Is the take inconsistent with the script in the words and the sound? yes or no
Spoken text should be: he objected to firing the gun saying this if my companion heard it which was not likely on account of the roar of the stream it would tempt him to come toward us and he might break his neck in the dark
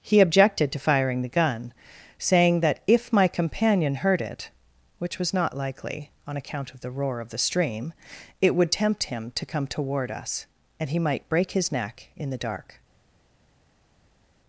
yes